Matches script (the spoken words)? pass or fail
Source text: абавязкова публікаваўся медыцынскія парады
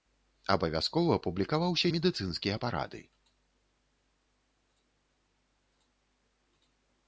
pass